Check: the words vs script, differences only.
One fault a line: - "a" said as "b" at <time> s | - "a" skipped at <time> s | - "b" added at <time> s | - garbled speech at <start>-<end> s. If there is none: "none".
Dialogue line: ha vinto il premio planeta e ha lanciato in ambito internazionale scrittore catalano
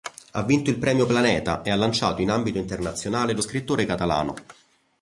- "lo" added at 3.3 s